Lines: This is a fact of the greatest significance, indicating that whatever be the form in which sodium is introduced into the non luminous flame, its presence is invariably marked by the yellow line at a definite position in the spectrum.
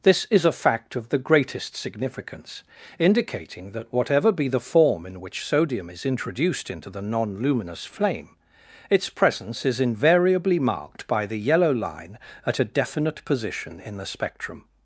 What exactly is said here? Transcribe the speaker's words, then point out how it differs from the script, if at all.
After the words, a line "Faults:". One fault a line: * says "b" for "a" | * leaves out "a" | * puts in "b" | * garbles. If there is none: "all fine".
This is a fact of the greatest significance, indicating that whatever be the form in which sodium is introduced into the non luminous flame, its presence is invariably marked by the yellow line at a definite position in the spectrum.
Faults:
all fine